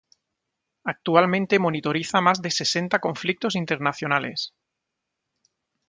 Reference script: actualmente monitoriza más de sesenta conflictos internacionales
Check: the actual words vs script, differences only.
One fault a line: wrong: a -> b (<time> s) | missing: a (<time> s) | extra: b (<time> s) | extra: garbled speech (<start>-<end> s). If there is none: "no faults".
no faults